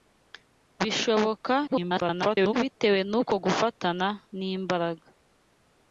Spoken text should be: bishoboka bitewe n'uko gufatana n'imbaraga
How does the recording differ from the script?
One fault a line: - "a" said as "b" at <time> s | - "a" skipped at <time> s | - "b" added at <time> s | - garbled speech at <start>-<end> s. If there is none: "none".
- garbled speech at 1.7-2.5 s